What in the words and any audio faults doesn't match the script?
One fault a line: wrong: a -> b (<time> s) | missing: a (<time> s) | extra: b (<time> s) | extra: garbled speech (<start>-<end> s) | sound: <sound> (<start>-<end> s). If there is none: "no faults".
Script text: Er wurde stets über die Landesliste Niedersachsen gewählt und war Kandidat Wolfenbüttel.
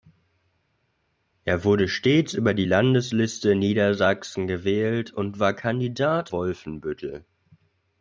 no faults